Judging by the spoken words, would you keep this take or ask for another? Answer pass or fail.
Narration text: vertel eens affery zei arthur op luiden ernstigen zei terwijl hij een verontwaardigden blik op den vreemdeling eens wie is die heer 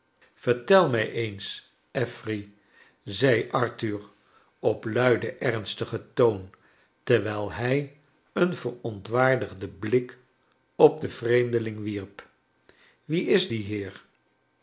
fail